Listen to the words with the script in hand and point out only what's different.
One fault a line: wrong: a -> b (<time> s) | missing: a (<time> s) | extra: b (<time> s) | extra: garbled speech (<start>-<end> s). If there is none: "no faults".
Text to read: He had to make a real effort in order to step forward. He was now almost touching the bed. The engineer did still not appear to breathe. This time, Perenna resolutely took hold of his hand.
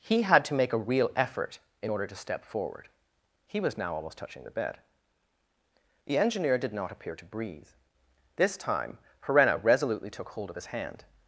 missing: still (6.7 s)